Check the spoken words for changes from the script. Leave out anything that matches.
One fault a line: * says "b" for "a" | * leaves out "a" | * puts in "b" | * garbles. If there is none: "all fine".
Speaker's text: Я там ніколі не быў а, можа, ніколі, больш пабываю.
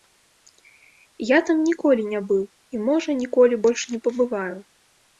* says "і" for "а"
* puts in "не"